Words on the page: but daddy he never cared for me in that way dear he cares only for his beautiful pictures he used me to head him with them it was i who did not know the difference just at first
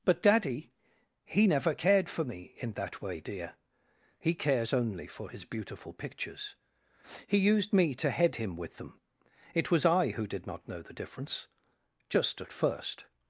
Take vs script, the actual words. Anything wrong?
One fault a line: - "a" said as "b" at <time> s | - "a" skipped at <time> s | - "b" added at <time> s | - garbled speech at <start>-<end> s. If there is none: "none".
none